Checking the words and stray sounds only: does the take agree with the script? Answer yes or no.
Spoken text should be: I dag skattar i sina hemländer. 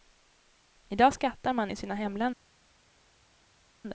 no